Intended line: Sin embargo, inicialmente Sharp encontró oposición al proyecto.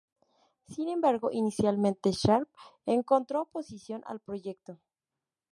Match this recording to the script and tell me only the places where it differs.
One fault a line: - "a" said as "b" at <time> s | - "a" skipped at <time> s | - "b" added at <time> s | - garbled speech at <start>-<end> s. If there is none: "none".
none